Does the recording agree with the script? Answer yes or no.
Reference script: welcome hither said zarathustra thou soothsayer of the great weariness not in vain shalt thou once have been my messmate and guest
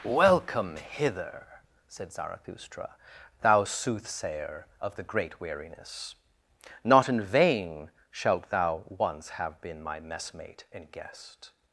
yes